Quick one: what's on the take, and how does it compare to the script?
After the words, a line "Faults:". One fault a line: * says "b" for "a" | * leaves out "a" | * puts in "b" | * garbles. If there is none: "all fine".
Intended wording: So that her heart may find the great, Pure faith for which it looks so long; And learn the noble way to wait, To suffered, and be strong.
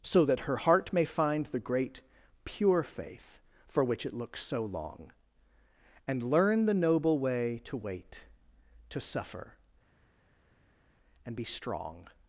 So that her heart may find the great, Pure faith for which it looks so long; And learn the noble way to wait, To suffer, and be strong.
Faults:
* says "suffer" for "suffered"